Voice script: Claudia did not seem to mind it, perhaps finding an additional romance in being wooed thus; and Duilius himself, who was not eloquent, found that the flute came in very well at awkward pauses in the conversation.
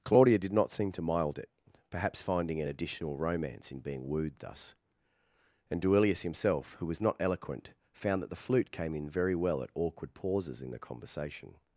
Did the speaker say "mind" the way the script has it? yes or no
no